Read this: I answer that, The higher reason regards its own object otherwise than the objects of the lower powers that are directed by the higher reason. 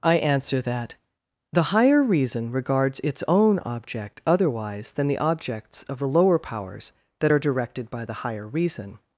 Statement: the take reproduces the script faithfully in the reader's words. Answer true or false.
true